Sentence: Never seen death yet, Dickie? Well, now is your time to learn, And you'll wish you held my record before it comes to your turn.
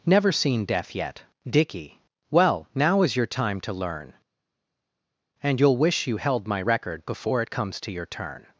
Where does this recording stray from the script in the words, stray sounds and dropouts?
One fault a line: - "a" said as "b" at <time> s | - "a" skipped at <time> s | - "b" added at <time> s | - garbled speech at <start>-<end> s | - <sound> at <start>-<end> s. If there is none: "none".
none